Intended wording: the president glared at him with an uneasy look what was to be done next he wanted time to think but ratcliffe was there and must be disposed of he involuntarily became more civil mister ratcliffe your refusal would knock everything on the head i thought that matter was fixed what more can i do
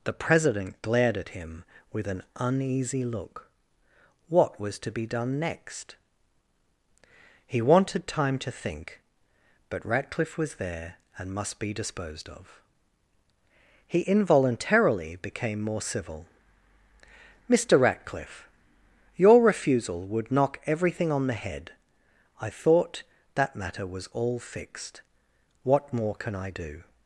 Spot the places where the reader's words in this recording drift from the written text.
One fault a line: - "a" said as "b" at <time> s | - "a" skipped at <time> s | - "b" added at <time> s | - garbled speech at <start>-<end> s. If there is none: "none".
- "all" added at 24.1 s